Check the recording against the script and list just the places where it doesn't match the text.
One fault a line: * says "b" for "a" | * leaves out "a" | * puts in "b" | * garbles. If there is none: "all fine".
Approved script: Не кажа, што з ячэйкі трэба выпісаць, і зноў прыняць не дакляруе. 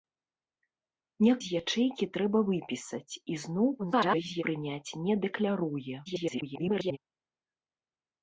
* leaves out "кажа што"
* garbles
* garbles